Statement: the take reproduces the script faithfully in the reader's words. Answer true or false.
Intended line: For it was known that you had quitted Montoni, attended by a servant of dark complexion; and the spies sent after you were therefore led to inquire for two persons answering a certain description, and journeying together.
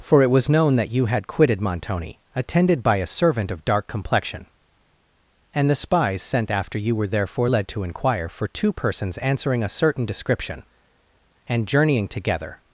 true